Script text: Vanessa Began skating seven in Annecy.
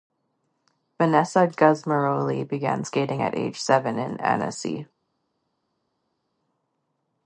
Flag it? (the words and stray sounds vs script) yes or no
yes